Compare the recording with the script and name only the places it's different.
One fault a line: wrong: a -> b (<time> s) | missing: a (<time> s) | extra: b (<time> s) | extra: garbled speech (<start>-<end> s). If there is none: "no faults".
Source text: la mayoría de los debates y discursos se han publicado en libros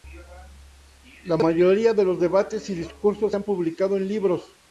no faults